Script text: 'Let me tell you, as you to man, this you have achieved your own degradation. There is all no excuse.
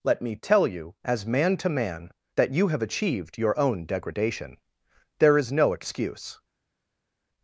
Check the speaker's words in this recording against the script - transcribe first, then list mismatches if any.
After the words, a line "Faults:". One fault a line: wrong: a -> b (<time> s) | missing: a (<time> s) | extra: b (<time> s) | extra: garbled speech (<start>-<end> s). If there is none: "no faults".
'Let me tell you, as man to man, that you have achieved your own degradation. There is no excuse.
Faults:
wrong: you -> man (1.3 s)
wrong: this -> that (2.4 s)
missing: all (5.5 s)